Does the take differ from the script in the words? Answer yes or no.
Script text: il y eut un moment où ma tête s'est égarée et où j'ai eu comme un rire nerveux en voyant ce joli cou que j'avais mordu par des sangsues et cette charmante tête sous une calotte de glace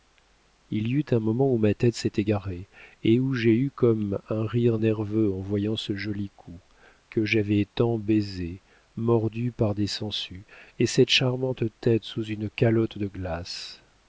yes